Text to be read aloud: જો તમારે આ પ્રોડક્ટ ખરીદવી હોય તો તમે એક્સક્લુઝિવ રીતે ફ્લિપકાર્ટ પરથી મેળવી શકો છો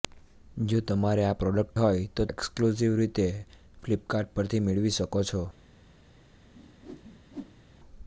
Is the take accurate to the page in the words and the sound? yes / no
no